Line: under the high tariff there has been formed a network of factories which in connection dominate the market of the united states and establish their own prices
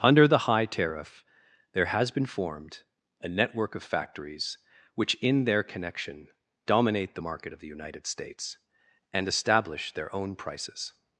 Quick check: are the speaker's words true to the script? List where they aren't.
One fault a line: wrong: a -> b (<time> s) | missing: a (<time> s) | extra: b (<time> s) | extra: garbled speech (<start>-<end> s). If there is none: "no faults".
extra: their (5.5 s)